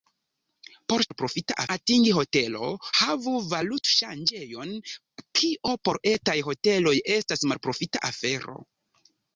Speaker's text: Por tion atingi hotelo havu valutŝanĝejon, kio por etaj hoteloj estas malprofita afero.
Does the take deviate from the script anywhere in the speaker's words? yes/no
yes